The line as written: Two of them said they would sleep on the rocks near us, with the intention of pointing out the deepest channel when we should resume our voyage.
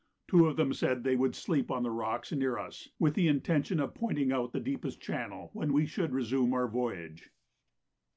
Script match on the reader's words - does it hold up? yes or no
yes